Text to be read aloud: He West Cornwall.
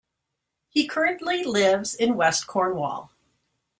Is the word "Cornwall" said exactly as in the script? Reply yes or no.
yes